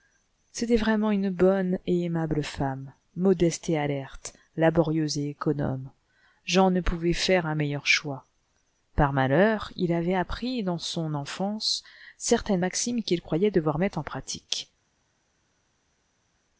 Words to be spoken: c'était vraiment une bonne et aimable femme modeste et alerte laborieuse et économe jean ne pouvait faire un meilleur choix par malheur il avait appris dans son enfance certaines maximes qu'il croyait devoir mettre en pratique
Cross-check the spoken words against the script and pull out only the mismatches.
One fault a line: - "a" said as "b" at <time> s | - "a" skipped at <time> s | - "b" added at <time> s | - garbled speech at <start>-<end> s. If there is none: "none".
none